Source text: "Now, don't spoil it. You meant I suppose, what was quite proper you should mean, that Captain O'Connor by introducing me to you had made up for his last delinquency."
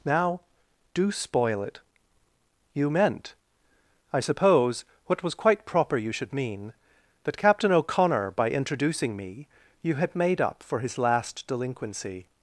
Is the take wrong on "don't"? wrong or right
wrong